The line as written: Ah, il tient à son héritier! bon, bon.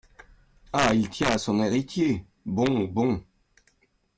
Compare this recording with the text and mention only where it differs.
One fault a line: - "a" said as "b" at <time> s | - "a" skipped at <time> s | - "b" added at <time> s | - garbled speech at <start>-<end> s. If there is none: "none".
none